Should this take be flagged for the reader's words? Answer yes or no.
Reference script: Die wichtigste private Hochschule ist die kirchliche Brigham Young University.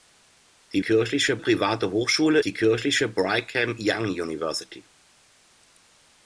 yes